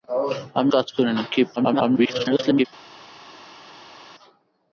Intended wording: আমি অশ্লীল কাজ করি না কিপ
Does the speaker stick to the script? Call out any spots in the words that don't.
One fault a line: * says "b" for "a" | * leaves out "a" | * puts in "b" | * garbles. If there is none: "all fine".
* leaves out "অশ্লীল"
* garbles